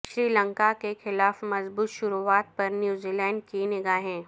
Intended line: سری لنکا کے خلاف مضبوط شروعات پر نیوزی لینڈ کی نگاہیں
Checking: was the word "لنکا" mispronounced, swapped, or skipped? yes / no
no